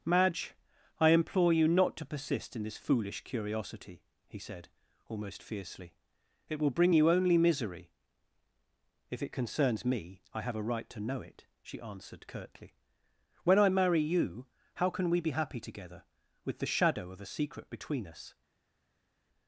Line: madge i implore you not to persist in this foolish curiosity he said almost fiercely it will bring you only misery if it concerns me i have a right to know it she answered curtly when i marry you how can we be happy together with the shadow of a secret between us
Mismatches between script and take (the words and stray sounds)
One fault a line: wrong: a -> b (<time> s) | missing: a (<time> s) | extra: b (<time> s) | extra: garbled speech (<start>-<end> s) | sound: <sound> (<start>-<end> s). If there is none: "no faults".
no faults